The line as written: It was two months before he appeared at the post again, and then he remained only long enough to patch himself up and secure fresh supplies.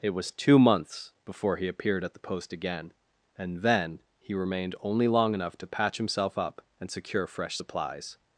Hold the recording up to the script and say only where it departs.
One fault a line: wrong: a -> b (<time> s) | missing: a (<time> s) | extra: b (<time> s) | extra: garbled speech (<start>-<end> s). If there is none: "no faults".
no faults